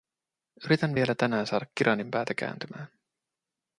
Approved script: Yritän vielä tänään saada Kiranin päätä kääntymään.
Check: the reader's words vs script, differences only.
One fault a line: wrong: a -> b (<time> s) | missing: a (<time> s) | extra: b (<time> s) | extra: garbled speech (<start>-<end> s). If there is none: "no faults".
no faults